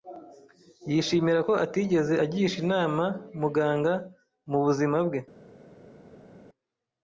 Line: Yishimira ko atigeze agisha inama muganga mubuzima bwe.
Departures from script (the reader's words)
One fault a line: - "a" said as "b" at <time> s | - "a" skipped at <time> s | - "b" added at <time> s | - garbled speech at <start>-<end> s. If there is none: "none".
none